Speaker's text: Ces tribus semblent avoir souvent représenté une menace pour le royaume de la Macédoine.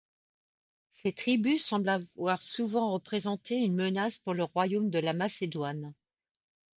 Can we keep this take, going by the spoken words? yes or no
yes